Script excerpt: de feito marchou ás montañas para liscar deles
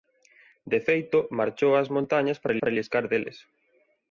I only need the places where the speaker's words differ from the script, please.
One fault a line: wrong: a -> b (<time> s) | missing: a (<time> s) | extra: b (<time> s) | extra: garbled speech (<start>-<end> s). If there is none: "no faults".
extra: para (2.6 s)